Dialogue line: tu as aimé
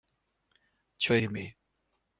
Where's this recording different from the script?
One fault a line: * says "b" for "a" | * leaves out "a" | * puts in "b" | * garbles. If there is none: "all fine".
all fine